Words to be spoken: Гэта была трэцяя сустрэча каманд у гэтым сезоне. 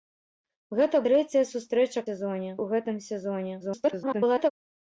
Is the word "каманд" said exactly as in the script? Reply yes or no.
no